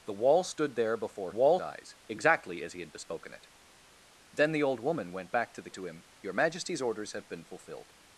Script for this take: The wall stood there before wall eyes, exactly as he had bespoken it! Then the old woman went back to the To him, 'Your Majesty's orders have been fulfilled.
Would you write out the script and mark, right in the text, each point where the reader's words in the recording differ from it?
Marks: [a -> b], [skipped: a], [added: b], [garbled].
The wall stood there before wall eyes, exactly as he had bespoken it! Then the old woman went back to the To him, 'Your Majesty's orders have been fulfilled.